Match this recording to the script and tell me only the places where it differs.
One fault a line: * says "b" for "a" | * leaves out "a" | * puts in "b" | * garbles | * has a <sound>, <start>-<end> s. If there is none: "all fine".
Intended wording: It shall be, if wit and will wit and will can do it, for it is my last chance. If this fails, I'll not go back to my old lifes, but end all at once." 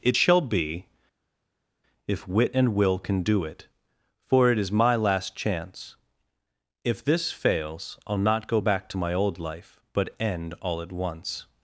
* leaves out "wit and will"
* says "life" for "lifes"